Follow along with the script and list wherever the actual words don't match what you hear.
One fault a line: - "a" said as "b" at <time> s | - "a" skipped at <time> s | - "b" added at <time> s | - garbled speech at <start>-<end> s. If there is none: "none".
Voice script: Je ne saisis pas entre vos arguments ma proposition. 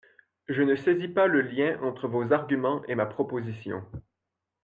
- "le lien" added at 1.3 s
- "et" added at 2.9 s